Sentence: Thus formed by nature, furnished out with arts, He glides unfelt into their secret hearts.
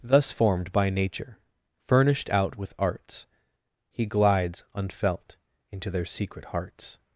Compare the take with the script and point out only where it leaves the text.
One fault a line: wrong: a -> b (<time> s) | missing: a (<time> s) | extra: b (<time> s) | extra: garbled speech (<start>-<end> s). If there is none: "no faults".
no faults